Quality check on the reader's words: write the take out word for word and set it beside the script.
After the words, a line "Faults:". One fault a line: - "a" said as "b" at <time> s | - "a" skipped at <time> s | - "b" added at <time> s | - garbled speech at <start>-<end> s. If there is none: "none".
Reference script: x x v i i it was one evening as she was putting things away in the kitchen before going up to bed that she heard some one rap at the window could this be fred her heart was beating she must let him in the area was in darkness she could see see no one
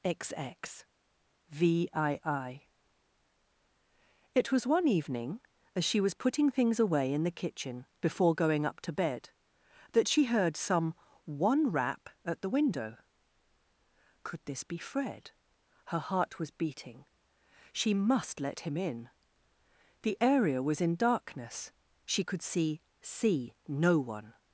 x x v i i it was one evening as she was putting things away in the kitchen before going up to bed that she heard some one rap at the window could this be fred her heart was beating she must let him in the area was in darkness she could see see no one
Faults:
none